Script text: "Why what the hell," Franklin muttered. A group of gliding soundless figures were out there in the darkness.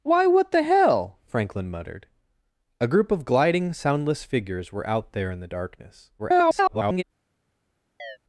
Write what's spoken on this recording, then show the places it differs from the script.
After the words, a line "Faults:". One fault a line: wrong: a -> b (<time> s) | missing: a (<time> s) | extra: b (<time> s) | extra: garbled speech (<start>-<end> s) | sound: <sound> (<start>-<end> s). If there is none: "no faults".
"Why what the hell," Franklin muttered. A group of gliding soundless figures were out there in the darkness. [garbled]
Faults:
extra: garbled speech (6.2-7.0 s)
sound: chirp (8.0-8.2 s)